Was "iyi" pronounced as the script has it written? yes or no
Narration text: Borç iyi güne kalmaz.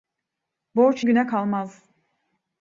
no